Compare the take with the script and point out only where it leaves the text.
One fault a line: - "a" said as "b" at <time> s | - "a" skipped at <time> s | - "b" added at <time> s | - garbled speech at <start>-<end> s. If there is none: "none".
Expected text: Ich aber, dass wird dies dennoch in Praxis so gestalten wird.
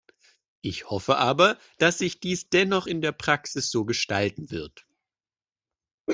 - "hoffe" added at 0.9 s
- "wird" said as "sich" at 2.0 s
- "der" added at 3.0 s